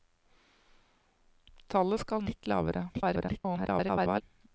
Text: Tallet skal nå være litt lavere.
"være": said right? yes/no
no